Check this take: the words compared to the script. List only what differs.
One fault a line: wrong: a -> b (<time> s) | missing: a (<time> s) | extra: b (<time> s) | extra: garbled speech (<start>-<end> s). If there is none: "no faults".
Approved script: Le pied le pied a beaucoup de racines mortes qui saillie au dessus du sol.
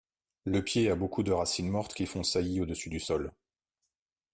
missing: le pied (0.9 s)
extra: font (2.1 s)